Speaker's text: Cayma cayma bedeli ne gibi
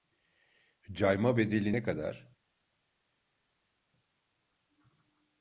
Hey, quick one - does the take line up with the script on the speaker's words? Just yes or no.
no